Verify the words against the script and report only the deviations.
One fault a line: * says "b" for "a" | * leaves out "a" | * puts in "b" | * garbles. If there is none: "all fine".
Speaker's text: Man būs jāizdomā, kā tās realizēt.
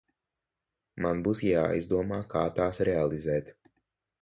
all fine